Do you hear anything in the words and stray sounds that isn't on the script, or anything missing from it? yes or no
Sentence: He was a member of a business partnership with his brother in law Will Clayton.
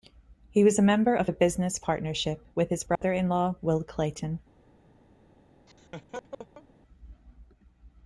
yes